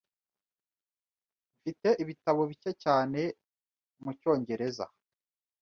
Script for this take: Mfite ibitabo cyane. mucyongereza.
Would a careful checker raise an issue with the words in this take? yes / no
yes